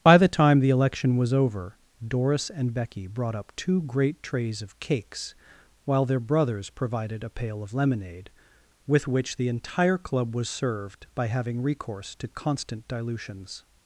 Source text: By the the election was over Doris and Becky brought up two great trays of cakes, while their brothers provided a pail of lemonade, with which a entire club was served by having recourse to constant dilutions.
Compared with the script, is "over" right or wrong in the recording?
right